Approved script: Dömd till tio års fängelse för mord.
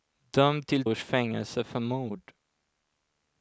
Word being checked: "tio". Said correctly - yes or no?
no